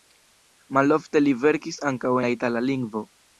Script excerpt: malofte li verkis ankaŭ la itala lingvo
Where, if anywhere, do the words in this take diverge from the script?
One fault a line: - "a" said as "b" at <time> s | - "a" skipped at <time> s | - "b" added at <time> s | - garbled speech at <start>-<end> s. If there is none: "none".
none